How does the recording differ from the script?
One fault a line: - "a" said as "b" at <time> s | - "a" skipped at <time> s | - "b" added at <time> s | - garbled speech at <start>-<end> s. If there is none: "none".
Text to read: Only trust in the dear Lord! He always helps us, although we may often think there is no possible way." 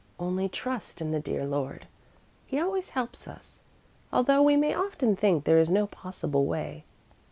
none